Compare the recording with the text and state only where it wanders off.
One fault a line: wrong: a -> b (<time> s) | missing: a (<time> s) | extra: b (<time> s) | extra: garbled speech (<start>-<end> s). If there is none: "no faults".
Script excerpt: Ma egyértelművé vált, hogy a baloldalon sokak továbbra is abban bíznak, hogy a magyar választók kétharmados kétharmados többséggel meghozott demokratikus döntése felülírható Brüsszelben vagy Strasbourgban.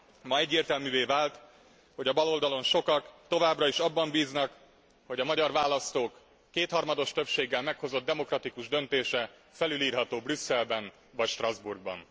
missing: kétharmados (7.1 s)